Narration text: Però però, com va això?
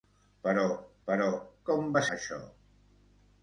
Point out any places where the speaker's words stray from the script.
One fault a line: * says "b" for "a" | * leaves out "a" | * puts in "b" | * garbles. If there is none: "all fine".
all fine